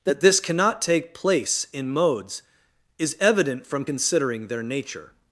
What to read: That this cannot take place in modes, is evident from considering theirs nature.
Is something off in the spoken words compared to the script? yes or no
yes